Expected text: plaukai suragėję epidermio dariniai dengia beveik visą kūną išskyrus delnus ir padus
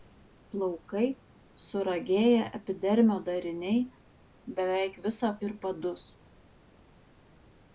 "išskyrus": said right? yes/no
no